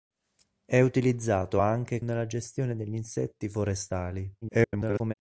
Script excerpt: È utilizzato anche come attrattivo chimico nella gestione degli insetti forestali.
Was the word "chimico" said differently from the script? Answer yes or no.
yes